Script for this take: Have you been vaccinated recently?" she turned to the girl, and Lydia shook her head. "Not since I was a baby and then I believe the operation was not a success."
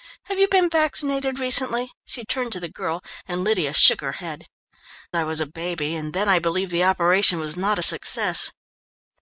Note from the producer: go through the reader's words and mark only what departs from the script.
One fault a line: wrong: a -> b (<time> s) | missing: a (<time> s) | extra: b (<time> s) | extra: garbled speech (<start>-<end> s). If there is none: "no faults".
missing: Not since (4.5 s)